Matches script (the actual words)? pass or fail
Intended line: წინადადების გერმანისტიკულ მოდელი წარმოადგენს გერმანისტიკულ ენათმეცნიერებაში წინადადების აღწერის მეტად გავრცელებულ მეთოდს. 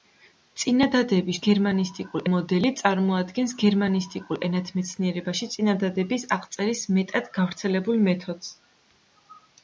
pass